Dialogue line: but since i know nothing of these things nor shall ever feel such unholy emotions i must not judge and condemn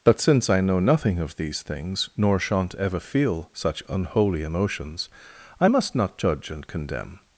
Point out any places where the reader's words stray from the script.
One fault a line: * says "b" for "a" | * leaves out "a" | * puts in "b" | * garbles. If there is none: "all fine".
* says "shan't" for "shall"